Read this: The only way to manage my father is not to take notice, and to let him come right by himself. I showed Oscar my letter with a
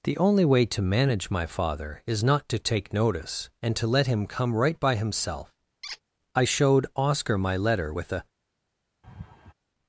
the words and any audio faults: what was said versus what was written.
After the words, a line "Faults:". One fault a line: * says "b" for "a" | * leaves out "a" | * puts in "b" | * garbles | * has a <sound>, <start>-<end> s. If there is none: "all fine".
The only way to manage my father is not to take notice, and to let him come right by himself. I showed Oscar my letter with a
Faults:
* has a squeak, 5.8-6.0 s
* has a laugh, 9.0-9.5 s